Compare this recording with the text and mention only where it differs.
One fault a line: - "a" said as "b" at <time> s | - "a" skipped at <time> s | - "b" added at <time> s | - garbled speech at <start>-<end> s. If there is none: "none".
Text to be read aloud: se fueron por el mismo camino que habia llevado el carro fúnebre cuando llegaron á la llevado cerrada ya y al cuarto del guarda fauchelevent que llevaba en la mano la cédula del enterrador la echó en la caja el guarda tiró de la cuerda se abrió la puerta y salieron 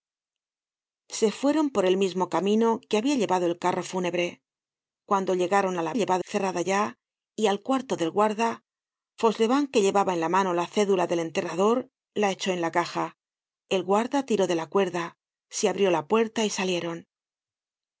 none